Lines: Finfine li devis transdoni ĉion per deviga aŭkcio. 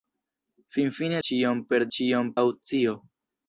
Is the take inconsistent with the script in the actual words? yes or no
yes